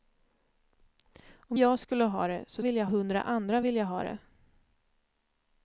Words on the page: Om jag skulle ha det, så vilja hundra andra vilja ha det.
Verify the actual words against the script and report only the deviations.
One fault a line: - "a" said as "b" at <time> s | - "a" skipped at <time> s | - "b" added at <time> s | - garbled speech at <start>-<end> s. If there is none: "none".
none